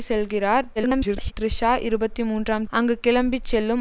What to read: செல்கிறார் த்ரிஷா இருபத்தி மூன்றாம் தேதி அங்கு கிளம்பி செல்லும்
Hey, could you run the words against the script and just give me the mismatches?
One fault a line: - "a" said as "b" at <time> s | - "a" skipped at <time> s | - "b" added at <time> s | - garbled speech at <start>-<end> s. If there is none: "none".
- garbled speech at 0.8-1.3 s
- "தேதி" skipped at 2.7 s